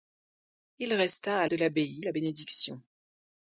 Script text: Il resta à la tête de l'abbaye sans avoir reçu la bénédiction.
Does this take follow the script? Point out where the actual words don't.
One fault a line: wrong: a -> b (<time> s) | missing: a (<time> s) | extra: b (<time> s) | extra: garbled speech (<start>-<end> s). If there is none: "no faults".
missing: la tête (1.5 s)
missing: sans avoir reçu (2.0 s)